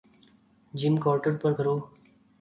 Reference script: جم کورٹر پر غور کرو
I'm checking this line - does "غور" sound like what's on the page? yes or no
no